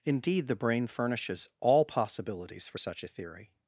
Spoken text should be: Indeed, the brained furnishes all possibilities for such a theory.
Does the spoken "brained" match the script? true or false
false